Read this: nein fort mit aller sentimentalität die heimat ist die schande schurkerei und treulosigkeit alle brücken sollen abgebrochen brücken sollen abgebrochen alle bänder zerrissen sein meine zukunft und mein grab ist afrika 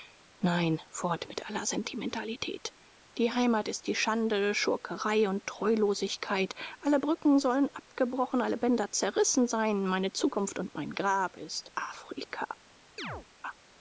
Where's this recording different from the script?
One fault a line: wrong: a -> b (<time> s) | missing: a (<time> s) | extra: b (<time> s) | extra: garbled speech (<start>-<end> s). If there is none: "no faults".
missing: brücken sollen abgebrochen (8.4 s)